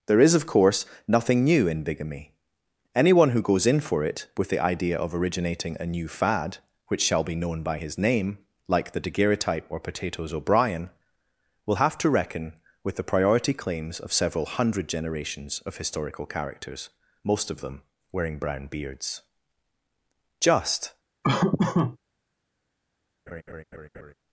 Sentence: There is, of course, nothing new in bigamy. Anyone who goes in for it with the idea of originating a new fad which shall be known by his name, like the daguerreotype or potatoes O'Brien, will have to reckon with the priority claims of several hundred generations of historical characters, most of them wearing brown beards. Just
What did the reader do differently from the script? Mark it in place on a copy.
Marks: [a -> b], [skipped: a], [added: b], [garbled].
There is, of course, nothing new in bigamy. Anyone who goes in for it with the idea of originating a new fad which shall be known by his name, like the daguerreotype or potatoes O'Brien, will have to reckon with the priority claims of several hundred generations of historical characters, most of them wearing brown beards. Just